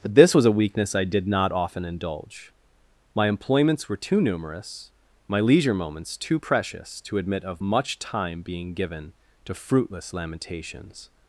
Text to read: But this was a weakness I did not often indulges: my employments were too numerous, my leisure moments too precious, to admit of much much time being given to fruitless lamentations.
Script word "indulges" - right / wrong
wrong